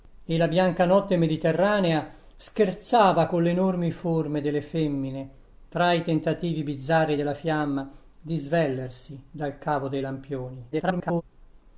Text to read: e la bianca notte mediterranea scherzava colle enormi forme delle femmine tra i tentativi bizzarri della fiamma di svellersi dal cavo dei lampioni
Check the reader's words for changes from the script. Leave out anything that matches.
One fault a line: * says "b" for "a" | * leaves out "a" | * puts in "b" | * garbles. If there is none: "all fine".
* garbles